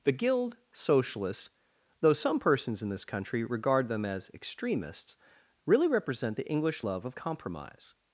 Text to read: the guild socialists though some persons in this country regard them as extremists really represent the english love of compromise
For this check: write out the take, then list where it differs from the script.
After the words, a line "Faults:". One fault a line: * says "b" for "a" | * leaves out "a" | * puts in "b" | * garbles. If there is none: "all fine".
the guild socialists though some persons in this country regard them as extremists really represent the english love of compromise
Faults:
all fine